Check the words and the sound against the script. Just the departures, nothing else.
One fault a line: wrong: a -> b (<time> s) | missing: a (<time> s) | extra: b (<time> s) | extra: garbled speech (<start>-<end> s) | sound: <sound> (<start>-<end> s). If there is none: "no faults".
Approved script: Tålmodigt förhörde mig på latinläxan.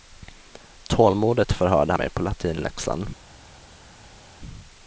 no faults